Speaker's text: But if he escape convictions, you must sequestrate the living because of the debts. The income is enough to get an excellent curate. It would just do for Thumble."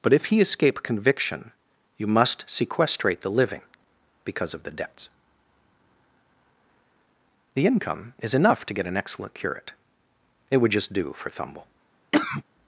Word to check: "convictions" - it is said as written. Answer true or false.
false